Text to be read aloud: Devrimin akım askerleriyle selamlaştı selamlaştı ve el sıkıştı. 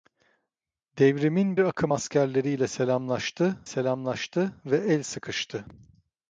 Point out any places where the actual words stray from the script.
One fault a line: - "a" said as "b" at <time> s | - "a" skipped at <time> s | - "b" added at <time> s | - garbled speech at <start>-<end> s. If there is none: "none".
none